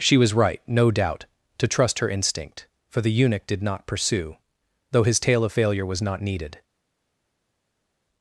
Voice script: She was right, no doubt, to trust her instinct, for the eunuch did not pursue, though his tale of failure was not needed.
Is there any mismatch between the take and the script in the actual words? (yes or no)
no